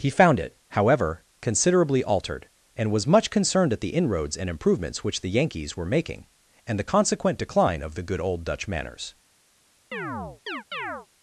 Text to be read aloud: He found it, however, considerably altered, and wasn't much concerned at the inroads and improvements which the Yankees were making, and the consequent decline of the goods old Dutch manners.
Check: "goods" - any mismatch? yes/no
yes